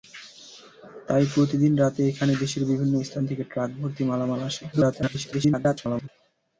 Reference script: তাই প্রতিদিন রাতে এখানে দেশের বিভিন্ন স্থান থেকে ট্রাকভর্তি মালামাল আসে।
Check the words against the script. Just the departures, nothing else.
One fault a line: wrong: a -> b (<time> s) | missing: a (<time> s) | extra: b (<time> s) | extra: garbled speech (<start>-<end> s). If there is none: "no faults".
extra: garbled speech (4.7-6.1 s)